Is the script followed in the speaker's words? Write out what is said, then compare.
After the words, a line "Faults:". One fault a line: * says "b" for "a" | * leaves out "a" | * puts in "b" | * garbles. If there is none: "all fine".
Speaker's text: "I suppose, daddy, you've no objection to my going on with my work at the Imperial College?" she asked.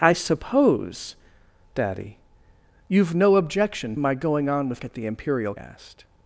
"I suppose, daddy, you've no objection my going on with at the Imperial Asked.
Faults:
* leaves out "to"
* leaves out "my work"
* leaves out "College she"